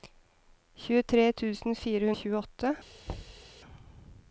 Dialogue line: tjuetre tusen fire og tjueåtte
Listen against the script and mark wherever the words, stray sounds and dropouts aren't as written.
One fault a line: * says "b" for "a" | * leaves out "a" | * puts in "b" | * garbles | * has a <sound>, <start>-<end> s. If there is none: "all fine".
* has a thud, 3.1-3.5 s